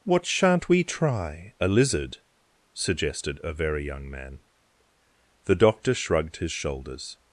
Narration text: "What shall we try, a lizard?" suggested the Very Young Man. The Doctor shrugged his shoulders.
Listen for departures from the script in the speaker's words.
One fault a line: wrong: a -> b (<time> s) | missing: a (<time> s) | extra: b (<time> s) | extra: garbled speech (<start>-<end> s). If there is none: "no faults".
wrong: shall -> shan't (0.2 s)
wrong: the -> a (3.4 s)